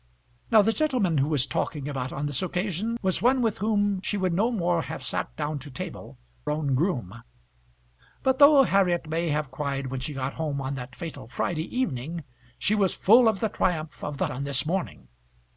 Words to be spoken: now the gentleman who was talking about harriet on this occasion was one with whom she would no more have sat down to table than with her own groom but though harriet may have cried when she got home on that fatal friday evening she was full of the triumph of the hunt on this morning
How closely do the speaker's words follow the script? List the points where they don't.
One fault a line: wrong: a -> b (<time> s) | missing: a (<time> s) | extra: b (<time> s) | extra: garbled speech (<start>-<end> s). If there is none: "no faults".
missing: harriet (2.1 s)
missing: than with her (6.2 s)
missing: hunt (14.3 s)